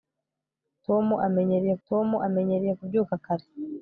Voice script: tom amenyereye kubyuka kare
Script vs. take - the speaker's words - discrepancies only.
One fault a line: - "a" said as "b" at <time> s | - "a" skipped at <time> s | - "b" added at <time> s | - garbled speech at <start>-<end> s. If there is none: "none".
- "tom amenyereye" added at 1.9 s